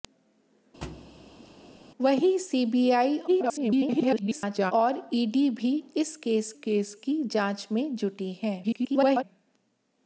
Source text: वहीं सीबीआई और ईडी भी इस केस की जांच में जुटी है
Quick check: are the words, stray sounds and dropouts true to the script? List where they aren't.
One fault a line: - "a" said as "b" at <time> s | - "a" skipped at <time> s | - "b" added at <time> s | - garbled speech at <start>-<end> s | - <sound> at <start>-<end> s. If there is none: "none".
- thud at 0.8-1.5 s
- garbled speech at 3.3-4.7 s
- "केस" added at 6.5 s
- garbled speech at 8.6-9.2 s